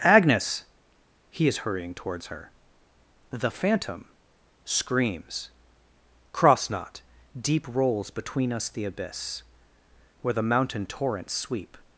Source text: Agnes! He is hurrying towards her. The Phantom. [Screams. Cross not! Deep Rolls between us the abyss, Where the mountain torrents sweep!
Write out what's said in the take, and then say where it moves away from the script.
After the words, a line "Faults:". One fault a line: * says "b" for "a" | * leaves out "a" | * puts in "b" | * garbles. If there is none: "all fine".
Agnes! He is hurrying towards her. The Phantom. [Screams. Cross not! Deep Rolls between us the abyss, Where the mountain torrents sweep!
Faults:
all fine